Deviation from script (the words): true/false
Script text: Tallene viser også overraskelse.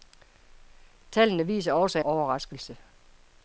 false